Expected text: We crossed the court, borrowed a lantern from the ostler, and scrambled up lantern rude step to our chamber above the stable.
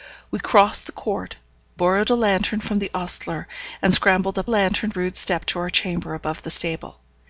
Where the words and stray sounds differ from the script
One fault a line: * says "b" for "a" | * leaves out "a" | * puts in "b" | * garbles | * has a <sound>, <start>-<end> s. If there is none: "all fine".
all fine